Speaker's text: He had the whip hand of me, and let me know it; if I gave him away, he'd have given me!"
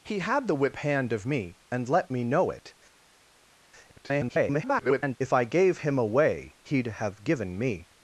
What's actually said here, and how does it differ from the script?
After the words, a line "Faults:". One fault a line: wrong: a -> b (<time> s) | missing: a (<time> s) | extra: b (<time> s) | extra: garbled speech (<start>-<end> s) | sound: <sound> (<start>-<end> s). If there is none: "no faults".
He had the whip hand of me, and let me know it; [garbled] if I gave him away, he'd have given me!"
Faults:
extra: garbled speech (3.9-5.2 s)